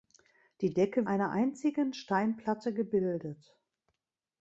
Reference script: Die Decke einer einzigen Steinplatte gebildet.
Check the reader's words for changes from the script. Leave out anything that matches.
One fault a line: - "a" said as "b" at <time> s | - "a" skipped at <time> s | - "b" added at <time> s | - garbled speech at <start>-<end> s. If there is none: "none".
none